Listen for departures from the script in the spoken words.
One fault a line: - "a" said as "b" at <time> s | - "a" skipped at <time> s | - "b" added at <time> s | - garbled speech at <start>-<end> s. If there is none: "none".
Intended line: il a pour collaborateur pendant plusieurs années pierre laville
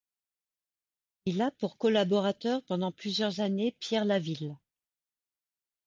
none